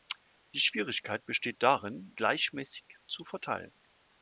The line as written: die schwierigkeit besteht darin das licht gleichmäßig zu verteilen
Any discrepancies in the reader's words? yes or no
yes